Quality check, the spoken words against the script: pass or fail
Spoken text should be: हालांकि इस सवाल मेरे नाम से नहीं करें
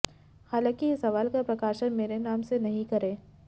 fail